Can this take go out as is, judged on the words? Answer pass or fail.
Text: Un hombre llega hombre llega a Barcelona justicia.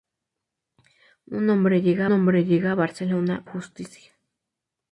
pass